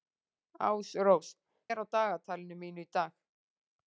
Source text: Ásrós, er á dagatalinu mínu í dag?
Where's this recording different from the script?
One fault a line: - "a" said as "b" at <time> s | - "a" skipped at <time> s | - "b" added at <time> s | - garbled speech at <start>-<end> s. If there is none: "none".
none